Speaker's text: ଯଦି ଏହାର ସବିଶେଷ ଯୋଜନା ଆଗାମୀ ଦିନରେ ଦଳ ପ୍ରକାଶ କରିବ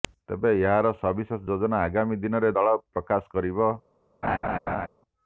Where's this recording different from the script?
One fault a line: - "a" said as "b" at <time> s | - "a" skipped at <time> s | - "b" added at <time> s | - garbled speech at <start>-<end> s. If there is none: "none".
- "ଯଦି" said as "ତେବେ" at 0.3 s